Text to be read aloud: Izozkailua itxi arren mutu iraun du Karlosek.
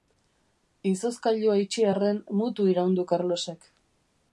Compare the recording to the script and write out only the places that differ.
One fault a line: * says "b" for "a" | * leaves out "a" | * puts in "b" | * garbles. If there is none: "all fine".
all fine